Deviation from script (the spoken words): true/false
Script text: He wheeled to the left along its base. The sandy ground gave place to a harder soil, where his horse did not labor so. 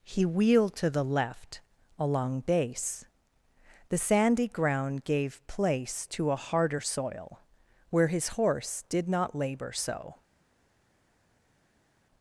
true